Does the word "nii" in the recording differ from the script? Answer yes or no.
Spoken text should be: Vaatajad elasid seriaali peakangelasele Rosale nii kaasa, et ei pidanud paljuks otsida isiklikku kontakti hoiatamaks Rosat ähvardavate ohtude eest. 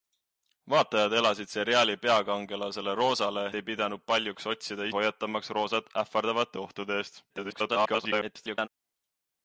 yes